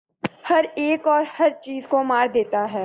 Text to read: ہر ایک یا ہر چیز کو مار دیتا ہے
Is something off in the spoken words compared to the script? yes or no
yes